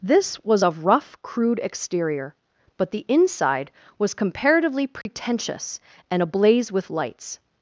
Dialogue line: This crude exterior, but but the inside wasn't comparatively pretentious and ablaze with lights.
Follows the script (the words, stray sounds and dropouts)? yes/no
no